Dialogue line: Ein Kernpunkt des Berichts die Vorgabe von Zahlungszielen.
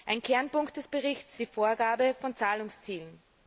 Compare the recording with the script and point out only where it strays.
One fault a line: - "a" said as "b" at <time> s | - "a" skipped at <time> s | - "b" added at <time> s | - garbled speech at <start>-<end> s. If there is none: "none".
none